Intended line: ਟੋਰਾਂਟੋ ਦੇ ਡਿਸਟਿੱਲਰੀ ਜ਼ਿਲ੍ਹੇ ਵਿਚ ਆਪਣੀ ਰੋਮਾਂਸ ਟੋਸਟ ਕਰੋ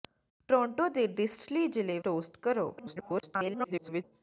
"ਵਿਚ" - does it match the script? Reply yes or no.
no